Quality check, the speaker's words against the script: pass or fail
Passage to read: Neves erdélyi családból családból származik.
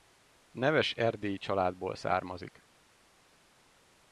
fail